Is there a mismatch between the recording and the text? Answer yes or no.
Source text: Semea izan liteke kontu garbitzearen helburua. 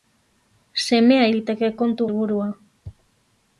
yes